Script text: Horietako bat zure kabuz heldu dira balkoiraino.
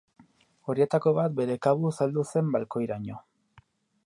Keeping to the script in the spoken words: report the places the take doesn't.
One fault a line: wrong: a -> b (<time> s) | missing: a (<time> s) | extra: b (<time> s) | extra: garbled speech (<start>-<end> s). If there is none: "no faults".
wrong: zure -> bere (1.4 s)
wrong: dira -> zen (2.3 s)